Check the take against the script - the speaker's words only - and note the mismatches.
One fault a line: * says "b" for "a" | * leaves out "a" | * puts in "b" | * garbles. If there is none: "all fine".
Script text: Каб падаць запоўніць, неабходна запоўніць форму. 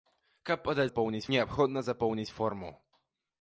all fine